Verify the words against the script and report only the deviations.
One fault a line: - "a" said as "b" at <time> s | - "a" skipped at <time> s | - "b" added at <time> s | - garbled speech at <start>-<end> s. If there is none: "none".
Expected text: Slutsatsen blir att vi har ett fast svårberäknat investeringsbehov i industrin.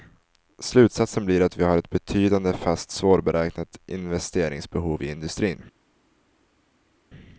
- "betydande" added at 1.9 s